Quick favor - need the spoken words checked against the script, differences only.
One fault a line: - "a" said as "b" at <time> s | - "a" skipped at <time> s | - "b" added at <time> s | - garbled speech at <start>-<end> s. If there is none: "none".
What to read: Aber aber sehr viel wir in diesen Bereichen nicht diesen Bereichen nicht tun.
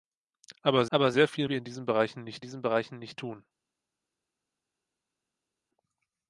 none